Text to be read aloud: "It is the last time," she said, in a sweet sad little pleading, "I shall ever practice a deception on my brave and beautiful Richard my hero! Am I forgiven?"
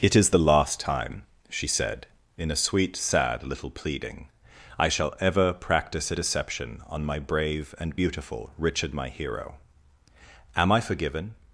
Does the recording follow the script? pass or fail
pass